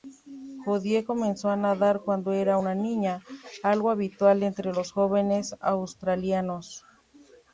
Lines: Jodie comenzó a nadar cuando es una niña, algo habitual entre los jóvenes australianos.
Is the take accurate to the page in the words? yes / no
no